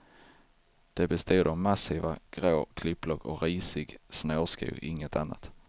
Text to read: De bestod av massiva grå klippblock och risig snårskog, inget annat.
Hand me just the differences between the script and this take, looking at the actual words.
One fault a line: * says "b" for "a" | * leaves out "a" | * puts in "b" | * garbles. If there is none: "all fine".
all fine